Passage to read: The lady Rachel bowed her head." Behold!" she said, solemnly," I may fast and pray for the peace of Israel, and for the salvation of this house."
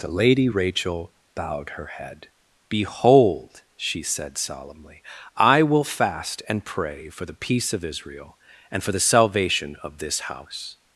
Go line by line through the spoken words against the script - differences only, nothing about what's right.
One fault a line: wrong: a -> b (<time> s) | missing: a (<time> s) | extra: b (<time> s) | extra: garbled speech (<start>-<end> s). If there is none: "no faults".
wrong: may -> will (5.6 s)